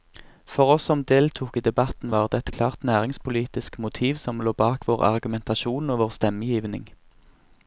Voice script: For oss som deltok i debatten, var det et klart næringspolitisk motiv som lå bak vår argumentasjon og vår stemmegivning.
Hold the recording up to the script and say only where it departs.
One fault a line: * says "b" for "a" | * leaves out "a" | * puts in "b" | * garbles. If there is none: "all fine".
all fine